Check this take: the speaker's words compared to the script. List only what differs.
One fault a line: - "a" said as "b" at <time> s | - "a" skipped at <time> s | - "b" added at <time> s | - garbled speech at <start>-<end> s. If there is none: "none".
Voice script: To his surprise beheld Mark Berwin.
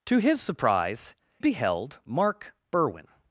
none